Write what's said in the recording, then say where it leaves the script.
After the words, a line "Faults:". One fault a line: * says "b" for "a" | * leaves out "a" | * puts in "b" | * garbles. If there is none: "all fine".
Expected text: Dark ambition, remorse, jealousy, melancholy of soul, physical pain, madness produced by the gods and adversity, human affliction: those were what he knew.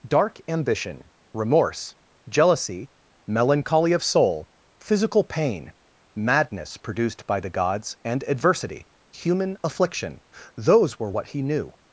Dark ambition, remorse, jealousy, melancholy of soul, physical pain, madness produced by the gods and adversity, human affliction: those were what he knew.
Faults:
all fine